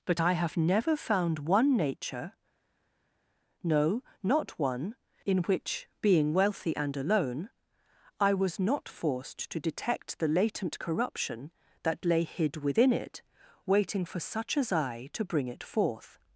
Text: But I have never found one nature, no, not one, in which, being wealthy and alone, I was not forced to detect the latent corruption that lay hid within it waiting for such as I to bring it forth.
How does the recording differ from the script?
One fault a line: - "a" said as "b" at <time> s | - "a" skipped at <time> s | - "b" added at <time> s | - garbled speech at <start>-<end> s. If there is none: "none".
none